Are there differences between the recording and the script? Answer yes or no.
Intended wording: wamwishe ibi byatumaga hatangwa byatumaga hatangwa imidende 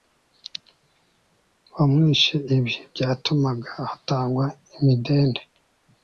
yes